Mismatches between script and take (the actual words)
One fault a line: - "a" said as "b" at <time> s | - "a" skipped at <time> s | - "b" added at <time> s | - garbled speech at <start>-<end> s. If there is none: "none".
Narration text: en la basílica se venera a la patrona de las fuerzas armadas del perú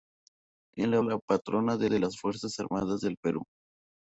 - "basílica se venera" skipped at 1.0 s
- "de" added at 1.8 s